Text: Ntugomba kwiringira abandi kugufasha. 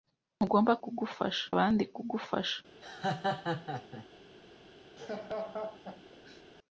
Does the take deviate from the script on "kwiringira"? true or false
true